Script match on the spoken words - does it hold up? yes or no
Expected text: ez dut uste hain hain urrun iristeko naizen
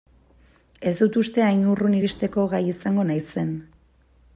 no